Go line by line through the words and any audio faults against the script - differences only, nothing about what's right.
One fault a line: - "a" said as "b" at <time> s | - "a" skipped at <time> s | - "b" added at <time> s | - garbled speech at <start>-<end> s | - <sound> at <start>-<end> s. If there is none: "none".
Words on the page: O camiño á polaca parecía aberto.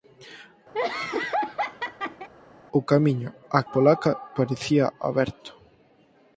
- laugh at 0.7-2.3 s